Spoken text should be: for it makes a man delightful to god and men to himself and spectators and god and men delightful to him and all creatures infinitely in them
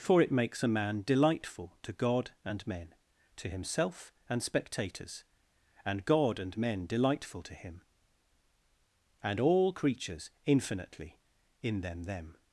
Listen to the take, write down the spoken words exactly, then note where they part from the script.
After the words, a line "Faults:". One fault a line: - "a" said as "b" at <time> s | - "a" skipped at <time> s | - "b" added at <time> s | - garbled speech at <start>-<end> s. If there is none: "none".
for it makes a man delightful to god and men to himself and spectators and god and men delightful to him and all creatures infinitely in them them
Faults:
- "them" added at 12.0 s